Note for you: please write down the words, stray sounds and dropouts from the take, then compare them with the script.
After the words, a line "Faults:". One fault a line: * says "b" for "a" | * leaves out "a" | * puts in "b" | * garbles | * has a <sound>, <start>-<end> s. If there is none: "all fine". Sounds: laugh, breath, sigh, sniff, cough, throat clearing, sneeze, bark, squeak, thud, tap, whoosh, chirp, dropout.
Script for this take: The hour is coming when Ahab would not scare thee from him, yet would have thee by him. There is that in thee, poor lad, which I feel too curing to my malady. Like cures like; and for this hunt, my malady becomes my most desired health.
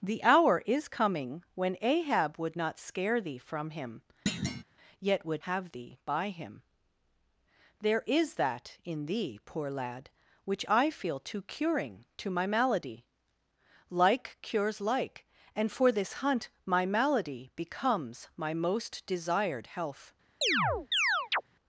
The hour is coming when Ahab would not scare thee from him, yet would have thee by him. There is that in thee, poor lad, which I feel too curing to my malady. Like cures like; and for this hunt, my malady becomes my most desired health.
Faults:
* has a thud, 4.3-4.6 s
* has a chirp, 20.4-21.4 s